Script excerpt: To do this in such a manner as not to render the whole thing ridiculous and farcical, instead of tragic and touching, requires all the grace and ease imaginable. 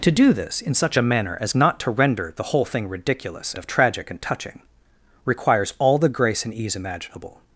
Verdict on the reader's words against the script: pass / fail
fail